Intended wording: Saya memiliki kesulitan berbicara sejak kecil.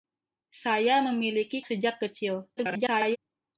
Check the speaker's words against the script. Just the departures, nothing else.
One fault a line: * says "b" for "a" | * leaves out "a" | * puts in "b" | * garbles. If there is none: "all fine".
* leaves out "kesulitan berbicara"
* garbles